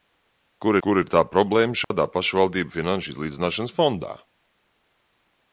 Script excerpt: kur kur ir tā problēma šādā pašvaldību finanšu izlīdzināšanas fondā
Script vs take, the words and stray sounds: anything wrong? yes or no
yes